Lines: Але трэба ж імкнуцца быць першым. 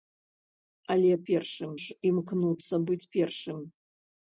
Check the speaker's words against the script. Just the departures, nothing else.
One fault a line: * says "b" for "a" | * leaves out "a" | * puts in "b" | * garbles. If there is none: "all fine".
* says "першым" for "трэба"